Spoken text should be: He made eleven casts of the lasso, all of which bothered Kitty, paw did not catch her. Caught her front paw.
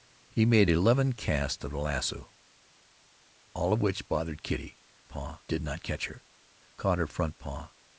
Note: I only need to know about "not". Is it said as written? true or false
true